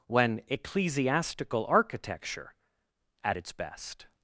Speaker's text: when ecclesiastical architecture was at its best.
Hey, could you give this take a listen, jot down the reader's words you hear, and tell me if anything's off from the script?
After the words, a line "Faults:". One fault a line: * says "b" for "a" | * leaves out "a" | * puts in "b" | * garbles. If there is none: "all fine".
when ecclesiastical architecture at its best.
Faults:
* leaves out "was"